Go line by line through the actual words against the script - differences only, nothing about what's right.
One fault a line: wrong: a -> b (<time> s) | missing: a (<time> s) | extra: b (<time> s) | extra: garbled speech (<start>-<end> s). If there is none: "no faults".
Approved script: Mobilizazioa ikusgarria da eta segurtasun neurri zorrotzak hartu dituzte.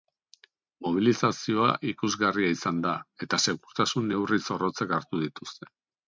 extra: izan (2.5 s)